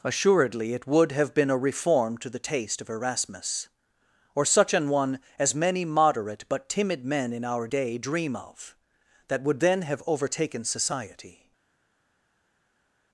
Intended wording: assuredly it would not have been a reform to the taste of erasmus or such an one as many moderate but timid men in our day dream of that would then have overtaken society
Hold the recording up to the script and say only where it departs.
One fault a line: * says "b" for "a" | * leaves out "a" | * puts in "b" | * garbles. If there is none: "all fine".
* leaves out "not"